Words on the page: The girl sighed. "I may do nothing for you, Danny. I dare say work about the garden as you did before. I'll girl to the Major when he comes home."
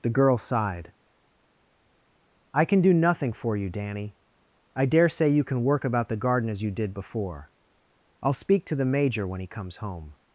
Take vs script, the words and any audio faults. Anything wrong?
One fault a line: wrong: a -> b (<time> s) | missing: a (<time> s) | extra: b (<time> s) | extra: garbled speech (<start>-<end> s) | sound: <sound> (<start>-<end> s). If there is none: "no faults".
wrong: may -> can (2.6 s)
extra: you can (5.3 s)
wrong: girl -> speak (8.3 s)